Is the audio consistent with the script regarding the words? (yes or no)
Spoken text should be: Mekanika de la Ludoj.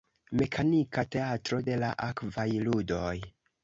no